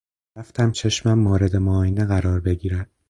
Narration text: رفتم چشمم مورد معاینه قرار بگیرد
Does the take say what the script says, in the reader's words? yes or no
yes